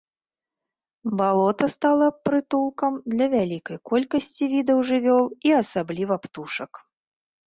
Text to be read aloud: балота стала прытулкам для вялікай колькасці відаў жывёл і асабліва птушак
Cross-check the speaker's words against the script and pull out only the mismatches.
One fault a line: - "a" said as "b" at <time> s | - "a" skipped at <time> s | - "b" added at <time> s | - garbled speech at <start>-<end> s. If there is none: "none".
none